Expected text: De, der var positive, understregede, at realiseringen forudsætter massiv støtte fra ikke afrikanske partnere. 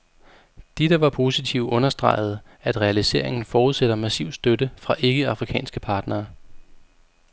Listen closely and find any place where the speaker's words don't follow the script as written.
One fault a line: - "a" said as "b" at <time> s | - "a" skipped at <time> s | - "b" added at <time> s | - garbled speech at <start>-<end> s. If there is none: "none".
none